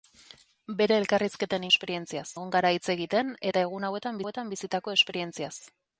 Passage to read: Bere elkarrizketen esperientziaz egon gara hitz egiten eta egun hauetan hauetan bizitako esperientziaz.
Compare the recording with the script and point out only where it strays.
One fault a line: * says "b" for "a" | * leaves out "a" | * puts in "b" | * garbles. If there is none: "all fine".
all fine